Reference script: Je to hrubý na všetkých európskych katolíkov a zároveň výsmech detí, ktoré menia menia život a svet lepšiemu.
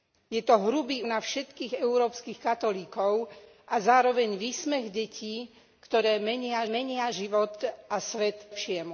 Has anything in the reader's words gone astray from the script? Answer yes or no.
no